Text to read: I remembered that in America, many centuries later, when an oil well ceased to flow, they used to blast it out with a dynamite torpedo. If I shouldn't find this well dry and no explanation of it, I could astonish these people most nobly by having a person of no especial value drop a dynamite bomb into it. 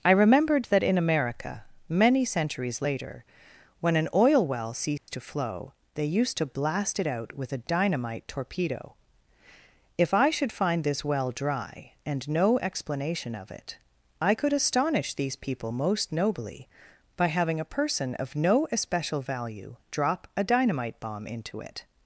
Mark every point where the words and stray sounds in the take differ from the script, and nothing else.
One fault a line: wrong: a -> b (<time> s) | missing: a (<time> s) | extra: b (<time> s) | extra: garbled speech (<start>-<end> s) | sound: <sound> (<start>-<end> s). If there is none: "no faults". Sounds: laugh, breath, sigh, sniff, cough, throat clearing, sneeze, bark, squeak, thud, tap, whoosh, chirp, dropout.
sound: dropout (5.0-5.1 s)
wrong: shouldn't -> should (10.3 s)